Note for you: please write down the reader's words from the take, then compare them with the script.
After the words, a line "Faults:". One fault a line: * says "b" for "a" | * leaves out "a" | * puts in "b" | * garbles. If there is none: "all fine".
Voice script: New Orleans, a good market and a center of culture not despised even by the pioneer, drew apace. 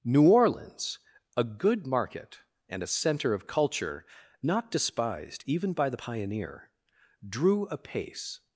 New Orleans, a good market and a center of culture not despised even by the pioneer, drew apace.
Faults:
all fine